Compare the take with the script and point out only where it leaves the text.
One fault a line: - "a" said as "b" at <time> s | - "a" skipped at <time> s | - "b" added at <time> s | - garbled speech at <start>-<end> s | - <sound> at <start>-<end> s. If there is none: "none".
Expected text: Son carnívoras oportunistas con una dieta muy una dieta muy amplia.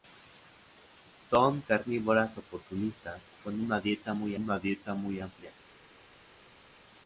none